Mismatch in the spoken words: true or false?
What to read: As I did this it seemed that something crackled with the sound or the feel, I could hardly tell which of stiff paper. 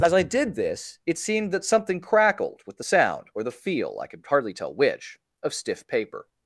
false